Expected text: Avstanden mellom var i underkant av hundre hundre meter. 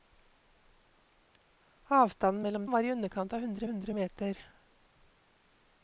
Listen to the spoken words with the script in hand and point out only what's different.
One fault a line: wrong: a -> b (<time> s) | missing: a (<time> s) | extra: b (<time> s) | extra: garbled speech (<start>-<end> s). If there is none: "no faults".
no faults